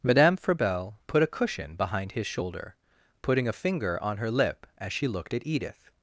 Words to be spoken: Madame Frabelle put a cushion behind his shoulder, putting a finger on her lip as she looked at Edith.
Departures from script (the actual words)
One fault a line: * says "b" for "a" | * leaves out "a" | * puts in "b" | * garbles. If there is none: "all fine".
all fine